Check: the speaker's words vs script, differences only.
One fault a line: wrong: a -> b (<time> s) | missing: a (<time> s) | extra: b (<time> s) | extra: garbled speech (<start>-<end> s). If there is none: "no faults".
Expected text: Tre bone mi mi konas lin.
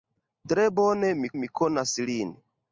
no faults